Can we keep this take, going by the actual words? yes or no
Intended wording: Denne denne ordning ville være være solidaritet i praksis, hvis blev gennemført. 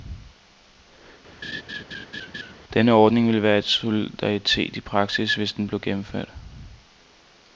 no